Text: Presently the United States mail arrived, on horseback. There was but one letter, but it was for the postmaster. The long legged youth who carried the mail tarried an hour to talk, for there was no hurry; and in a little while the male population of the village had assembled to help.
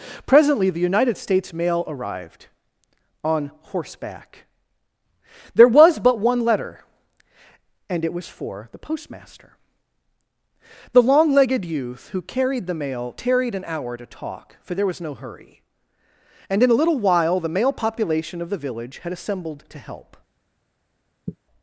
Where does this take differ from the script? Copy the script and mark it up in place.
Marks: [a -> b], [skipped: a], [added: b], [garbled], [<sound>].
Presently the United States mail arrived, on horseback. There was but one letter, [but -> and] it was for the postmaster. The long legged youth who carried the mail tarried an hour to talk, for there was no hurry; and in a little while the male population of the village had assembled to help. [sigh]